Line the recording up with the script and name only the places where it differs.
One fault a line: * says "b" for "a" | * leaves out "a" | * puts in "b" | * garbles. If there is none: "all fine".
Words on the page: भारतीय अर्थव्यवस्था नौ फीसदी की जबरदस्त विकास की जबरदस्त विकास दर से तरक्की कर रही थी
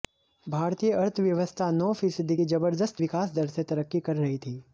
* leaves out "की जबरदस्त विकास"